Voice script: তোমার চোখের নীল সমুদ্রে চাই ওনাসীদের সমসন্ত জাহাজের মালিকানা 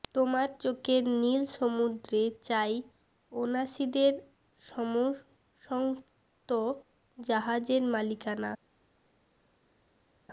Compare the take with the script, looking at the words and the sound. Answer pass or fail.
pass